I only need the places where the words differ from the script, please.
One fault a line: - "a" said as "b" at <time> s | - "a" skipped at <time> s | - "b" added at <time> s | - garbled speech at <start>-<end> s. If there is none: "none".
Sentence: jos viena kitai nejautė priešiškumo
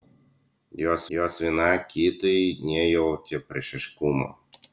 - "jos" added at 1.2 s